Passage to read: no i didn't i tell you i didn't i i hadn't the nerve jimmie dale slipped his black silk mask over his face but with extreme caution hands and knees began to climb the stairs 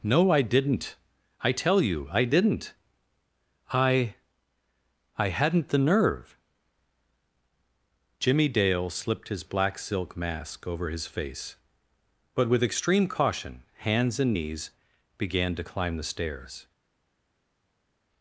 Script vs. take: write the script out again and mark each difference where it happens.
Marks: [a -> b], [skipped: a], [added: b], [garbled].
no i didn't i tell you i didn't i i hadn't the nerve jimmie dale slipped his black silk mask over his face but with extreme caution hands and knees began to climb the stairs